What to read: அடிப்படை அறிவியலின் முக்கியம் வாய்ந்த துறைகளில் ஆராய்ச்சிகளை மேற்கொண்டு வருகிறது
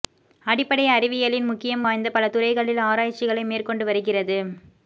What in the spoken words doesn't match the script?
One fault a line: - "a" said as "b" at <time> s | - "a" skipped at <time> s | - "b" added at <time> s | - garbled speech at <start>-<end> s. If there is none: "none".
- "பல" added at 2.1 s